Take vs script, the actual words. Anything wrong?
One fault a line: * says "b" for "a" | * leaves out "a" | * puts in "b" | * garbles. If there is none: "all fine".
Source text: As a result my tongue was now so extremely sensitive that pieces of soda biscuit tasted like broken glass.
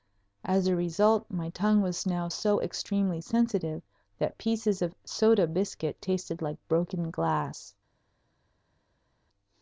all fine